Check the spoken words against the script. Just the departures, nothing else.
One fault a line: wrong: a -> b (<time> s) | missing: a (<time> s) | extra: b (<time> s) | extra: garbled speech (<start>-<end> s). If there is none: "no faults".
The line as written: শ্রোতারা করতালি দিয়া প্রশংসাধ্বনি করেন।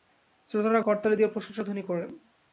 no faults